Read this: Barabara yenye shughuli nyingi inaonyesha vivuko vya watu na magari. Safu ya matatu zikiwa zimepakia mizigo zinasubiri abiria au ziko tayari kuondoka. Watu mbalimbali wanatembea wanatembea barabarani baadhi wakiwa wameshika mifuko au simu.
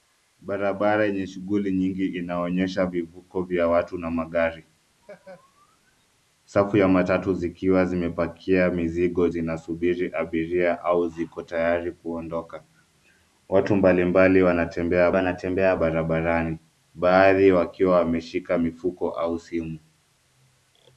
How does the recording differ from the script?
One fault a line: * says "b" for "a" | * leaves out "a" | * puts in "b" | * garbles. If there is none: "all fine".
all fine